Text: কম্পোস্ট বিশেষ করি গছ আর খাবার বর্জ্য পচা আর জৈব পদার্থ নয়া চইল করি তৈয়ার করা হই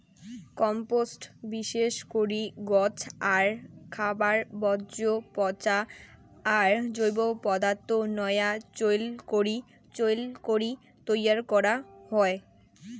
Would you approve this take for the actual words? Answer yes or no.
no